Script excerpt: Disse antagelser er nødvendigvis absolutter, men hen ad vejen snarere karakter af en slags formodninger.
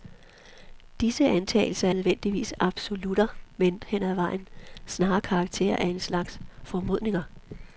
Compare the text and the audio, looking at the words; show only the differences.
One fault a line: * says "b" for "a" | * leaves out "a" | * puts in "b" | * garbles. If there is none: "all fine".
all fine